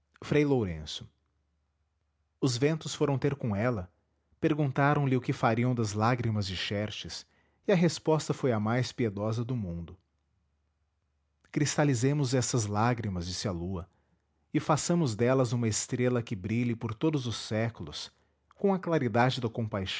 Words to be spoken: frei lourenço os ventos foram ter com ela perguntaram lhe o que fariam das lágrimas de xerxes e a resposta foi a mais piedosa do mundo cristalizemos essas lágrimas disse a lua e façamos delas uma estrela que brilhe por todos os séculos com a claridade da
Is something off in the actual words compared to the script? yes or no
no